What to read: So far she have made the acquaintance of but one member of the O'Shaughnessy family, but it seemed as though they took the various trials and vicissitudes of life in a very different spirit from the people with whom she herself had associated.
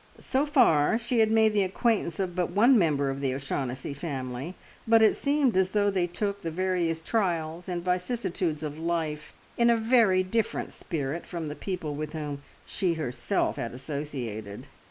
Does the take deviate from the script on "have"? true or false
true